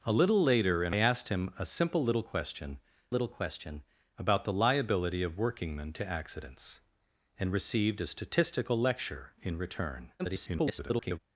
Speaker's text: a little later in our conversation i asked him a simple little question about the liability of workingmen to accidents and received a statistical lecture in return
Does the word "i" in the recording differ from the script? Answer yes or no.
yes